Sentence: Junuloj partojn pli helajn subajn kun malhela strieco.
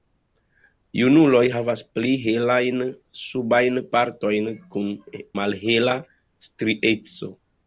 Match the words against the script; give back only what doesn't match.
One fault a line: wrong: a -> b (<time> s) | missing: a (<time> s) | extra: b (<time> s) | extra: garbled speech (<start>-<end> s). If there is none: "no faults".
wrong: partojn -> havas (1.5 s)
extra: partojn (4.0 s)